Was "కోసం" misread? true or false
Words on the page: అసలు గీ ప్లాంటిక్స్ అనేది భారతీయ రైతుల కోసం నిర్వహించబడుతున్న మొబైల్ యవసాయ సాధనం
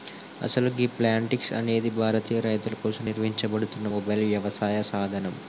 false